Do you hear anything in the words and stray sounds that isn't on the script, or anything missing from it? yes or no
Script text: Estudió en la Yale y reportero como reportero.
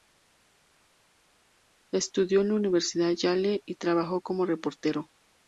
yes